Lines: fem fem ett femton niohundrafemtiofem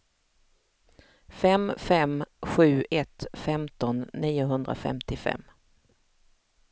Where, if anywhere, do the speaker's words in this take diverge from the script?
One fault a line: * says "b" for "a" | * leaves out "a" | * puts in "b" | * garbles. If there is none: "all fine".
* puts in "sju"